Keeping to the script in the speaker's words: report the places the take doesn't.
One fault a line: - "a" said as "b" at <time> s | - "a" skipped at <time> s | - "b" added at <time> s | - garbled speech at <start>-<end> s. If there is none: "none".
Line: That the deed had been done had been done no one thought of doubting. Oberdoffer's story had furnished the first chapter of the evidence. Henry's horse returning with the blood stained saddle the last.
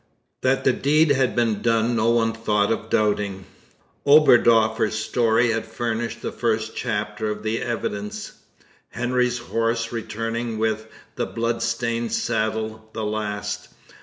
- "had been done" skipped at 1.9 s